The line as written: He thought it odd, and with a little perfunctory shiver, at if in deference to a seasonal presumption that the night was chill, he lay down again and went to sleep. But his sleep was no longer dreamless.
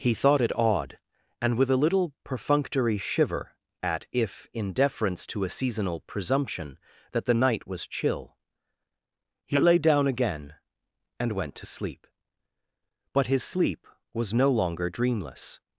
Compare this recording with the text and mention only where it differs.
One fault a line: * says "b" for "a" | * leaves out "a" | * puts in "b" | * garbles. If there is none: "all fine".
all fine